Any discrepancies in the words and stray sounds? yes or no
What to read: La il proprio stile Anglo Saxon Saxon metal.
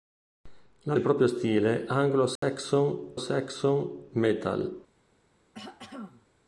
yes